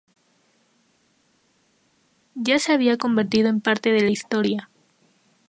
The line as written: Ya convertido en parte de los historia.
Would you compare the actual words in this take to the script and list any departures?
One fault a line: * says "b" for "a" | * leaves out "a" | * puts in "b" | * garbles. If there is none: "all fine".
* puts in "se había"
* says "la" for "los"